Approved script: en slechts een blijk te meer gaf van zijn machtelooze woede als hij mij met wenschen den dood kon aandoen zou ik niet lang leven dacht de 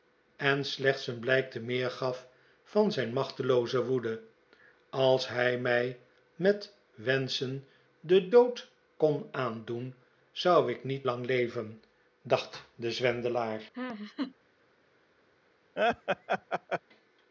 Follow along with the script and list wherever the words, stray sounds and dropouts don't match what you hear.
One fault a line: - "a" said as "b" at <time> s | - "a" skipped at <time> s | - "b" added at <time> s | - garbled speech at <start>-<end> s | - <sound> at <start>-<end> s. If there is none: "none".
- laugh at 13.7-14.4 s
- laugh at 15.8-16.8 s